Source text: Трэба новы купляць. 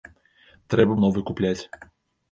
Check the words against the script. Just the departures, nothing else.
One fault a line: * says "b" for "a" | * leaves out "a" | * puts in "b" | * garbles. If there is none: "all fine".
all fine